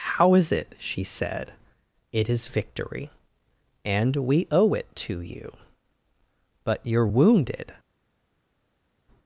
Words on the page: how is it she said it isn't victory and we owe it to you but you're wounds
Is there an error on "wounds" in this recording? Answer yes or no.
yes